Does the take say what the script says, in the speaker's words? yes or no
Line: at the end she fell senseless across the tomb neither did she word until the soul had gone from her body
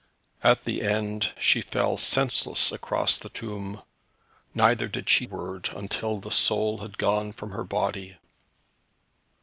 yes